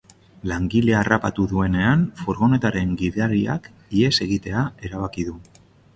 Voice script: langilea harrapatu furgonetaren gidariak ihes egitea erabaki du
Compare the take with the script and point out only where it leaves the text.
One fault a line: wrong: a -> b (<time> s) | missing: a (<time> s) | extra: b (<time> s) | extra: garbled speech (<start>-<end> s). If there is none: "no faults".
extra: duenean (1.5 s)